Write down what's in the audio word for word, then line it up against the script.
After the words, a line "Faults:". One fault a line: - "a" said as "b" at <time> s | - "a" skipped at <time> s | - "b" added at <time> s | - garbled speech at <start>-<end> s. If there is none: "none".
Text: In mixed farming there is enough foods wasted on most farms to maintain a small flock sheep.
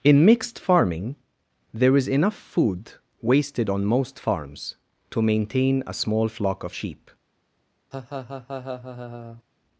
In mixed farming there is enough food wasted on most farms to maintain a small flock of sheep.
Faults:
- "foods" said as "food" at 2.3 s
- "of" added at 6.6 s